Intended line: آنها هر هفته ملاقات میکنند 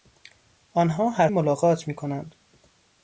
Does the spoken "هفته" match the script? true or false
false